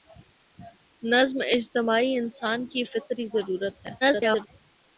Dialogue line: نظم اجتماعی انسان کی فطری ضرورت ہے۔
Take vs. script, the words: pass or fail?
fail